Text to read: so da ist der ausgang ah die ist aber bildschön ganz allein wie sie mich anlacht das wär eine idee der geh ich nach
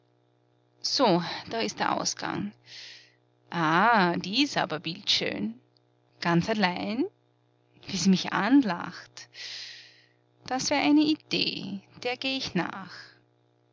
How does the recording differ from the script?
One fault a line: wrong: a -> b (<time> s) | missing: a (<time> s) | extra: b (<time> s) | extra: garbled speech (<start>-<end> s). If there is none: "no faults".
no faults